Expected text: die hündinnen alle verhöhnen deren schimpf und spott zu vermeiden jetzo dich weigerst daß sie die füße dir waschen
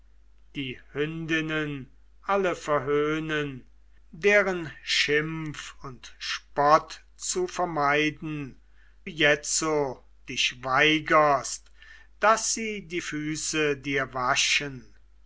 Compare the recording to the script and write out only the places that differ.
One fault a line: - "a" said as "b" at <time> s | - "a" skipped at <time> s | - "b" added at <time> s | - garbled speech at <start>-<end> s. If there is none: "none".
none